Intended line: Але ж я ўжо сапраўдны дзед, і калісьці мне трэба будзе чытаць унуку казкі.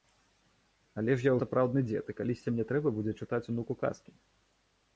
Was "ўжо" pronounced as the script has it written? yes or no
no